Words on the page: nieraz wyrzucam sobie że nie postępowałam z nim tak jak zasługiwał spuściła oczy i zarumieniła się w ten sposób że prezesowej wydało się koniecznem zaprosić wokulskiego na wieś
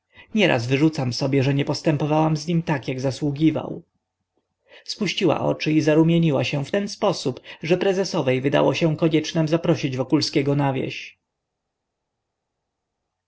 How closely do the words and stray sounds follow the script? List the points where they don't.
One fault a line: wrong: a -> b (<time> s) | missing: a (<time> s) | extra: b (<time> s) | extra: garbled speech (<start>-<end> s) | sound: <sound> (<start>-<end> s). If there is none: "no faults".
no faults